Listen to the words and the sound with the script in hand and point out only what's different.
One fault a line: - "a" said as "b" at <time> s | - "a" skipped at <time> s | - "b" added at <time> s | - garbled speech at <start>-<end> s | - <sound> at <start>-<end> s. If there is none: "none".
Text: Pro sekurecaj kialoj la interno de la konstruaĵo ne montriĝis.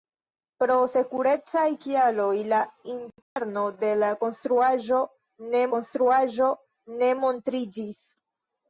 - dropout at 3.2-3.4 s
- "konstruaĵo ne" added at 5.8 s